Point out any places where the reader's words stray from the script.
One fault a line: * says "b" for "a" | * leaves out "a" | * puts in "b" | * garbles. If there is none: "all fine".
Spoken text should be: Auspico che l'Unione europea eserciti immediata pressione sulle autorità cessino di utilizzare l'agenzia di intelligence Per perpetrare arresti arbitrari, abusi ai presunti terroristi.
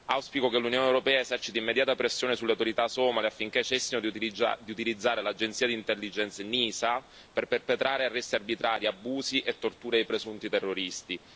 * puts in "somale affinché"
* puts in "NISA"
* puts in "e torture"